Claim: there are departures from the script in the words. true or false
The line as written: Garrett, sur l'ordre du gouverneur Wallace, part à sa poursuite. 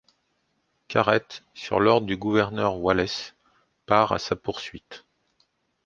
false